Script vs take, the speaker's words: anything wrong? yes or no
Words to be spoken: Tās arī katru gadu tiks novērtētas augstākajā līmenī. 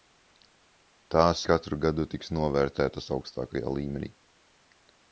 yes